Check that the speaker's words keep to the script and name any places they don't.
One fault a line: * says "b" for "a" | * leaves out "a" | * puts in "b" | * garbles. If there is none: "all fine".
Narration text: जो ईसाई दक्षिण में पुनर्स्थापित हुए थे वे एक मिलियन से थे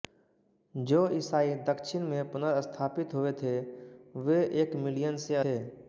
all fine